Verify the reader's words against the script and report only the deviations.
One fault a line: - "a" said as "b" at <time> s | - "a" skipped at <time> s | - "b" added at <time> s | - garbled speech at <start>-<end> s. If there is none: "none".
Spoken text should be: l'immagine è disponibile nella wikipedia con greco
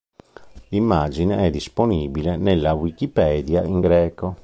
- "con" said as "in" at 3.6 s